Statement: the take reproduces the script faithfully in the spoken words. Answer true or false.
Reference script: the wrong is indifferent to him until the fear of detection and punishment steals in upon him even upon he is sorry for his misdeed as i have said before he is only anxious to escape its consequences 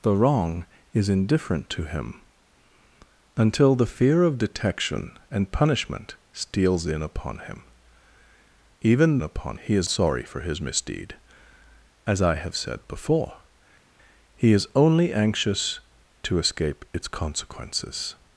true